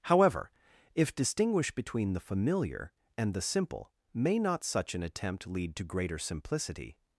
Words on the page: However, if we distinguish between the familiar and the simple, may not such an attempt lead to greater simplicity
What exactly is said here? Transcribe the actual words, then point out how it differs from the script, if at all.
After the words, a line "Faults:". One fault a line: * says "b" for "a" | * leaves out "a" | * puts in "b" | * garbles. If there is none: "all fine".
However, if distinguish between the familiar and the simple, may not such an attempt lead to greater simplicity
Faults:
* leaves out "we"